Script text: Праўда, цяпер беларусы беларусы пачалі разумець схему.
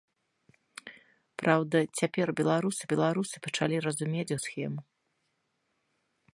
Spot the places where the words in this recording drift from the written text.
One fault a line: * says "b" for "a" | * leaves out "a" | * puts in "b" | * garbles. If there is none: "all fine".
all fine